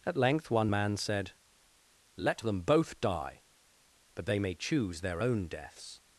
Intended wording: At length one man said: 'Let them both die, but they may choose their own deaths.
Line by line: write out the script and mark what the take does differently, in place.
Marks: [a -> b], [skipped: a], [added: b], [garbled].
At length one man said: 'Let them both die, but they may choose their own deaths.